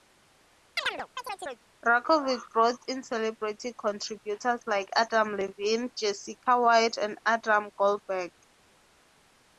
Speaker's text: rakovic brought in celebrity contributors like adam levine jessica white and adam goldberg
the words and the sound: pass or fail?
fail